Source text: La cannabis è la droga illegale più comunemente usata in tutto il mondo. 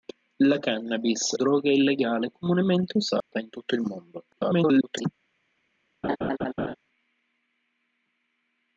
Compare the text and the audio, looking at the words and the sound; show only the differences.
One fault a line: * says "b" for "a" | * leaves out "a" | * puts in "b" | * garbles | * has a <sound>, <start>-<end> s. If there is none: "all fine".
* leaves out "è la"
* leaves out "più"
* has a dropout, 3.2-3.3 s
* garbles
* has a laugh, 6.0-6.8 s